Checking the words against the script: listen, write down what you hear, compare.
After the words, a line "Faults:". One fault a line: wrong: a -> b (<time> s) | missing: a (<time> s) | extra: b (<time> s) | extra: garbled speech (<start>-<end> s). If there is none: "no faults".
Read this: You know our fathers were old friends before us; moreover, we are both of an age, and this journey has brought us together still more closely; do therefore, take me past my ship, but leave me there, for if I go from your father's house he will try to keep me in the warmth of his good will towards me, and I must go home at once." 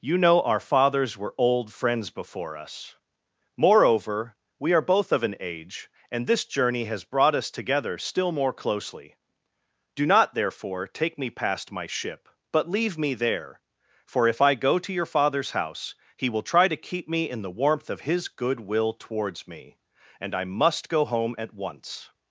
You know our fathers were old friends before us; moreover, we are both of an age, and this journey has brought us together still more closely; do not, therefore, take me past my ship, but leave me there, for if I go to your father's house he will try to keep me in the warmth of his good will towards me, and I must go home at once."
Faults:
extra: not (10.1 s)
wrong: from -> to (14.8 s)